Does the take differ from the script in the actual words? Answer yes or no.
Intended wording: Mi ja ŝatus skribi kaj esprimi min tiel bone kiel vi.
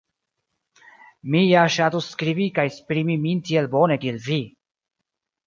no